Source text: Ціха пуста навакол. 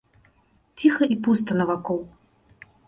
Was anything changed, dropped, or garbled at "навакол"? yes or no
no